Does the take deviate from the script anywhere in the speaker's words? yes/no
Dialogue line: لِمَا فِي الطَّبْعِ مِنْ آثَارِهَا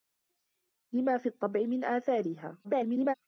yes